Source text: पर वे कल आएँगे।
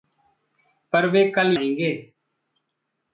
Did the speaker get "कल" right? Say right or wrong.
right